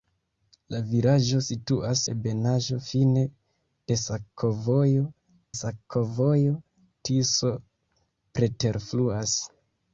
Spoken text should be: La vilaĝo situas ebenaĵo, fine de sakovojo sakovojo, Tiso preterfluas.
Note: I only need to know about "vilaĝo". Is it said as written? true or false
true